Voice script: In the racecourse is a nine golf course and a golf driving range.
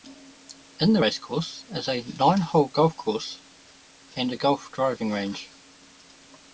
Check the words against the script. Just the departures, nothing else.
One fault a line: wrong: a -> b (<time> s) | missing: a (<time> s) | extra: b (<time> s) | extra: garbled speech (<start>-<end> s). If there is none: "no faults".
extra: hole (2.4 s)